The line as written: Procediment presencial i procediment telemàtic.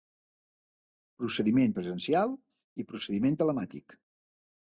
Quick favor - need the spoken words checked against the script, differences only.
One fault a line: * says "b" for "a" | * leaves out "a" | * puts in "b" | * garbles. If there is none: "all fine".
all fine